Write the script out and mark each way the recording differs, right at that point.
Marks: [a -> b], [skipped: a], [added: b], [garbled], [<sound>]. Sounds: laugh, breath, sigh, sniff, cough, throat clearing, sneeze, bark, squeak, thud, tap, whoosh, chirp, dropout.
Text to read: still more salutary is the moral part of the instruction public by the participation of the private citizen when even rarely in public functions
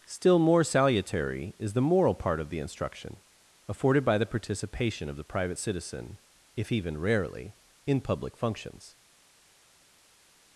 still more salutary is the moral part of the instruction [public -> afforded] by the participation of the private citizen [when -> if] even rarely in public functions